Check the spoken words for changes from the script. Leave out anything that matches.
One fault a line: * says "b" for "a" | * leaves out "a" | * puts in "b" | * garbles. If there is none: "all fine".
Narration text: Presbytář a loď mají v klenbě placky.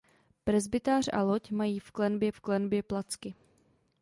* puts in "v klenbě"